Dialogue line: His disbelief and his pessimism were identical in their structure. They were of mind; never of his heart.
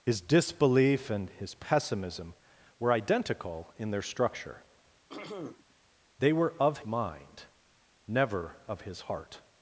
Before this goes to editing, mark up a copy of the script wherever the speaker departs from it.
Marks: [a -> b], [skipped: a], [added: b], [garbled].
His disbelief and his pessimism were identical in their structure. They were of mind; never of his heart.